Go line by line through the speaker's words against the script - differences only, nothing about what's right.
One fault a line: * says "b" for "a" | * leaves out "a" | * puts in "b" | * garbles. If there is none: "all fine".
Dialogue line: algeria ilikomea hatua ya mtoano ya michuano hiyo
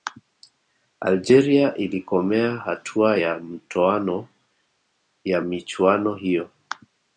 all fine